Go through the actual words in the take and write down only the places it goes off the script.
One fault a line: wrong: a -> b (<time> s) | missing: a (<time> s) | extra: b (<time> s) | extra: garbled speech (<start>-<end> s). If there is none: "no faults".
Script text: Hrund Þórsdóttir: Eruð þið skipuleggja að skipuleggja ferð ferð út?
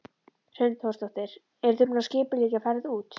wrong: skipuleggja -> búin (1.9 s)
missing: ferð (2.9 s)